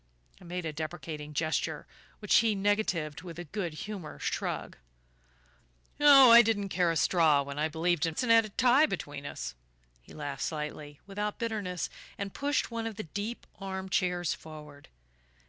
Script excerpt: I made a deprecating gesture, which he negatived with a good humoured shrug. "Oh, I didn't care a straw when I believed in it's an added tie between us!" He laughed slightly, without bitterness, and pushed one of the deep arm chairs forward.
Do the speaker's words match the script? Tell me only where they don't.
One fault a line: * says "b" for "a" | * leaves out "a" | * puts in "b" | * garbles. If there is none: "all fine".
all fine